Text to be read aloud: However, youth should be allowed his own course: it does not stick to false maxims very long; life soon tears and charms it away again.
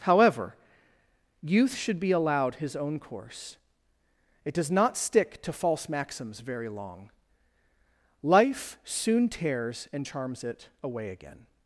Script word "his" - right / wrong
right